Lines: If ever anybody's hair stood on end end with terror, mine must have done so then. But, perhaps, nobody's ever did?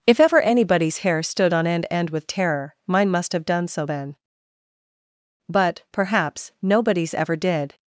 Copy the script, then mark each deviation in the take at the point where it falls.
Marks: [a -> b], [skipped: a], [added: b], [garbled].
If ever anybody's hair stood on end end with terror, mine must have done so then. But, perhaps, nobody's ever did?